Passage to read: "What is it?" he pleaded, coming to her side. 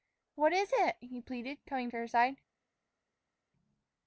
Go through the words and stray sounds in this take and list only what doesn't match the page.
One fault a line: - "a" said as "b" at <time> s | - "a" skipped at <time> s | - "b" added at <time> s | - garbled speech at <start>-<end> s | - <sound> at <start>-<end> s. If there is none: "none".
none